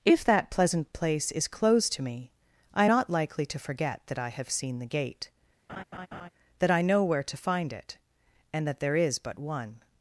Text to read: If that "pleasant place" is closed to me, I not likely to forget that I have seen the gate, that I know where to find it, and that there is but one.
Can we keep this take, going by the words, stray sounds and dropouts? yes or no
no